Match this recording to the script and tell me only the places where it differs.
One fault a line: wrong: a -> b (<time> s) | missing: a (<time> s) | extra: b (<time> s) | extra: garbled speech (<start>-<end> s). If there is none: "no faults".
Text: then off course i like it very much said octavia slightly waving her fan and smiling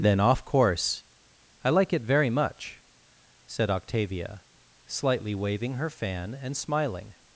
no faults